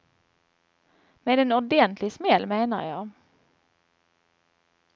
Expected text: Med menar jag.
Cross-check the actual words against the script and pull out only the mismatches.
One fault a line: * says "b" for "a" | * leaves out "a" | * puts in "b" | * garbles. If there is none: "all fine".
* puts in "en ordentlig smäll"